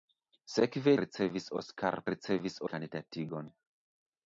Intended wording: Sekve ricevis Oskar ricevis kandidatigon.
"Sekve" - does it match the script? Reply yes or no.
yes